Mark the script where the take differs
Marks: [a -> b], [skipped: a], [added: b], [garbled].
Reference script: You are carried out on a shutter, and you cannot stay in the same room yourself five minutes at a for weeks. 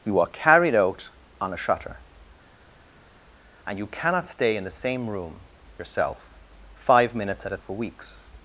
You are carried out on a shutter, and you cannot stay in the same room yourself five minutes at a for weeks.